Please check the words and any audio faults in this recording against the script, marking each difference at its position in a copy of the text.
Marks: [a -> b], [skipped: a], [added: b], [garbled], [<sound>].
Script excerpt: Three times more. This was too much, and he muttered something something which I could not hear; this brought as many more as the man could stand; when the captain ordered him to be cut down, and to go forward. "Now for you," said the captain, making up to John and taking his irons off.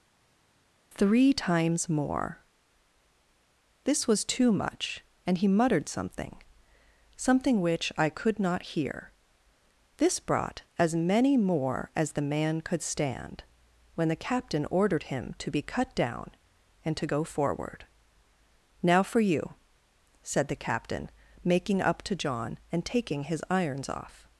Three times more. This was too much, and he muttered something something which I could not hear; this brought as many more as the man could stand; when the captain ordered him to be cut down, and to go forward. "Now for you," said the captain, making up to John and taking his irons off.